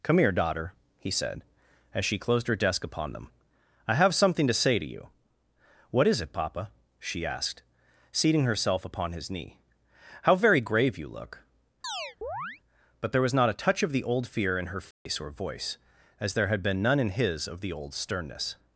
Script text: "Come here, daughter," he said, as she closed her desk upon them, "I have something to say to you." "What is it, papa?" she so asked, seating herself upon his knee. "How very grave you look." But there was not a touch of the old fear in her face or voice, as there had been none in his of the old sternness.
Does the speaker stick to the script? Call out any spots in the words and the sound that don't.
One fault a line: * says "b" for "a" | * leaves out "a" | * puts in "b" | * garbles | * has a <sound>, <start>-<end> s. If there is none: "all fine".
* leaves out "so"
* has a chirp, 11.8-12.6 s
* has a dropout, 14.9-15.1 s